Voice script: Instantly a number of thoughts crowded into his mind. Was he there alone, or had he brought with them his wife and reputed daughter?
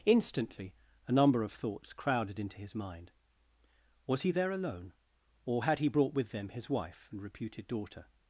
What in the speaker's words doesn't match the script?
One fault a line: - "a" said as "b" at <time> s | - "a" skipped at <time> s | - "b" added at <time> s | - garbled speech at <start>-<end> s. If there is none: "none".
none